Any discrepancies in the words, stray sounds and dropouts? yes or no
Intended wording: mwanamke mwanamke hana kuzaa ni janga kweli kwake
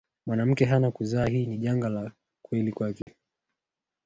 yes